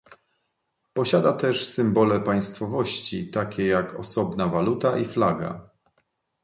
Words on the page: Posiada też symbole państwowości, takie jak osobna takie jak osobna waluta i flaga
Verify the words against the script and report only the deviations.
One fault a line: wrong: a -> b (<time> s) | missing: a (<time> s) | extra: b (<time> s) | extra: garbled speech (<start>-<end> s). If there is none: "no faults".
missing: takie jak osobna (4.5 s)